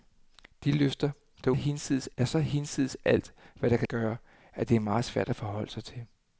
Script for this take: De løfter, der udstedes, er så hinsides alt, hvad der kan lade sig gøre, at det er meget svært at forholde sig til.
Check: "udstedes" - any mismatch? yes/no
yes